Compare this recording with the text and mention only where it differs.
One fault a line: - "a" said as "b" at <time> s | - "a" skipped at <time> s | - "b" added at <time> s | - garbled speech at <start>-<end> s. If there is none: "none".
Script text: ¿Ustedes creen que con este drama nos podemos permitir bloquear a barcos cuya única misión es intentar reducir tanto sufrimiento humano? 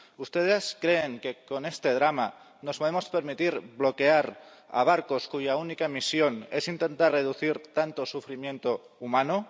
none